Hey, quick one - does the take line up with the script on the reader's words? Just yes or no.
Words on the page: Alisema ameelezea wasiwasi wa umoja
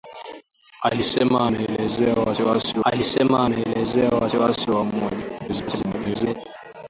no